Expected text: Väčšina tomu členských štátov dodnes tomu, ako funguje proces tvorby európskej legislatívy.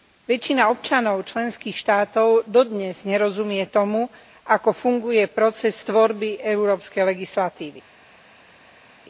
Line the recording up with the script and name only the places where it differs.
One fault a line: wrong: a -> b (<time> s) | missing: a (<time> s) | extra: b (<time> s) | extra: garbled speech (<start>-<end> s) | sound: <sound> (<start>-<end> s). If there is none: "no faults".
wrong: tomu -> občanov (0.7 s)
extra: nerozumie (3.0 s)